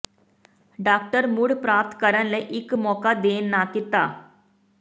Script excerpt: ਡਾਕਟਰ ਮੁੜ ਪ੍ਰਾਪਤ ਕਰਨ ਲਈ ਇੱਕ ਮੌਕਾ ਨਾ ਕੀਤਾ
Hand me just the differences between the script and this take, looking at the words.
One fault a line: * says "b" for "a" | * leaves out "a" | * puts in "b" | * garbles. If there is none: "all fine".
* puts in "ਦੇਣ"